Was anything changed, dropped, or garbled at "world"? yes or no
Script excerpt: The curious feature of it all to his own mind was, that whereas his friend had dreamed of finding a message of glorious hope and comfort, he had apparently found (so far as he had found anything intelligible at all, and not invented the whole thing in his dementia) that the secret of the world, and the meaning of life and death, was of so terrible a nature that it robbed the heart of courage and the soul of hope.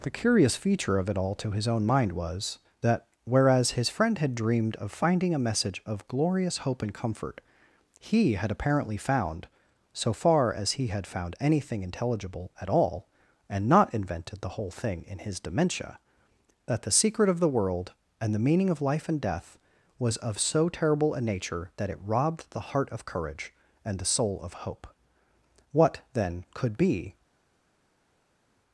no